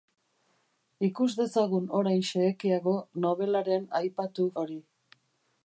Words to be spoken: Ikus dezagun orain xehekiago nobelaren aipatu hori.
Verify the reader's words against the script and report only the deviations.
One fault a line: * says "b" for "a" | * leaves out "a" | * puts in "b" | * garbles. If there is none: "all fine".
all fine